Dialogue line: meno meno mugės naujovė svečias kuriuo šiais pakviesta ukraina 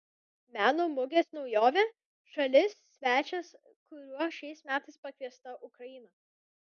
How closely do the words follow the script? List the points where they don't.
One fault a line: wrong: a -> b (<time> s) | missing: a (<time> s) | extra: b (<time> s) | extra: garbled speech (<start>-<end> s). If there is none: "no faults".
missing: meno (0.8 s)
extra: šalis (2.3 s)
extra: metais (4.7 s)